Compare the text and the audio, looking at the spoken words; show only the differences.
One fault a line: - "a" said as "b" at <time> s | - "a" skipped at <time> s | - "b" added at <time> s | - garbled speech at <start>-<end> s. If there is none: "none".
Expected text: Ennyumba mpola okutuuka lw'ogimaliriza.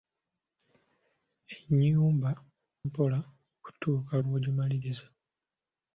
none